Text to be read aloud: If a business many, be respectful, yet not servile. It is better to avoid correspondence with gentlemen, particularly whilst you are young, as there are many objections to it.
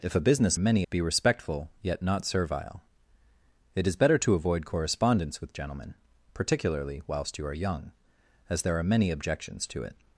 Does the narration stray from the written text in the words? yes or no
no